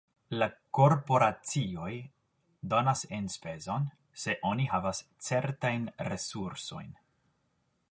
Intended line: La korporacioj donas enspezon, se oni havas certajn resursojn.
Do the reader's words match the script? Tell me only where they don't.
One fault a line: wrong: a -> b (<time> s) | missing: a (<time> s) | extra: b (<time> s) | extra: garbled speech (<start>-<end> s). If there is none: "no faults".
no faults